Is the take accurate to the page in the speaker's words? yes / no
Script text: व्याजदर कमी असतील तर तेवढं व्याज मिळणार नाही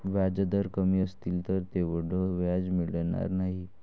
yes